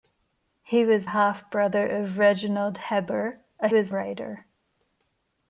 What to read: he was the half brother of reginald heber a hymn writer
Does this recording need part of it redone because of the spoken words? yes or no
yes